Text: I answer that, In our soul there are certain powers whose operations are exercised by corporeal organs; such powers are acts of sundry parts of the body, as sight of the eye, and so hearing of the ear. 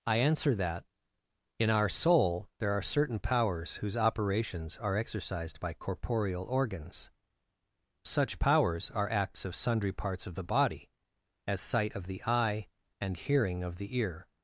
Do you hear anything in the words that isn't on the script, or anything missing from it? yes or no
yes